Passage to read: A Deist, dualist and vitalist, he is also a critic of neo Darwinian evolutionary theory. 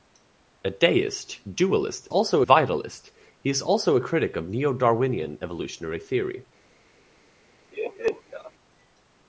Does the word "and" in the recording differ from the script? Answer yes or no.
yes